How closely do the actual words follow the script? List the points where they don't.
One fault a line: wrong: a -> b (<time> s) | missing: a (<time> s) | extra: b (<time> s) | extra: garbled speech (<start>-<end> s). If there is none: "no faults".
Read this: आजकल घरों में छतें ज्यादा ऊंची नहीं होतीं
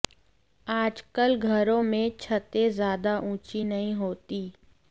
no faults